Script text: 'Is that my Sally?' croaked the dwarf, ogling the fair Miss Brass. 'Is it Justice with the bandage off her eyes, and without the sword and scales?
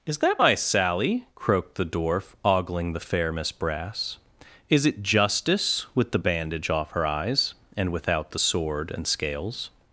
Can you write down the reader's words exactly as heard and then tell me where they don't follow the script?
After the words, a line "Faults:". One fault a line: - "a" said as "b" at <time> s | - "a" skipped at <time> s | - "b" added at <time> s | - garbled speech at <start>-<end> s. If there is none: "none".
'Is that my Sally?' croaked the dwarf, ogling the fair Miss Brass. 'Is it Justice with the bandage off her eyes, and without the sword and scales?
Faults:
none